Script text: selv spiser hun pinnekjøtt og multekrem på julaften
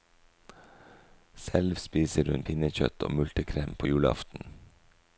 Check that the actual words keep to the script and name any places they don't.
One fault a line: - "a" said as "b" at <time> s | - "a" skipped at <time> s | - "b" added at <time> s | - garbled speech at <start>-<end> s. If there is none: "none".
none